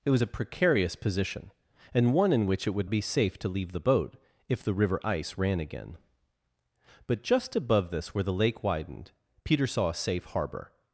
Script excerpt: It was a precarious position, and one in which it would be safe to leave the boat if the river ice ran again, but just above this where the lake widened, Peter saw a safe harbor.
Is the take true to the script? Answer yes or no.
yes